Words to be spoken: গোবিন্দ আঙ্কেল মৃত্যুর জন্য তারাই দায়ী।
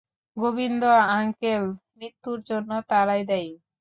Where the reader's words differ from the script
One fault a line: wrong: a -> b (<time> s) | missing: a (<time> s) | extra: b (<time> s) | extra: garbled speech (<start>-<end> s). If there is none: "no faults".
no faults